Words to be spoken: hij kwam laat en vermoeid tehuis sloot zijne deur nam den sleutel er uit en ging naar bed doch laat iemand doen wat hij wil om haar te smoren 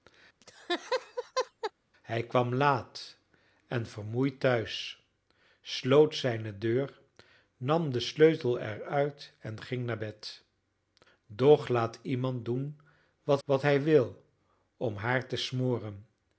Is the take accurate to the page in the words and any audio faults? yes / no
no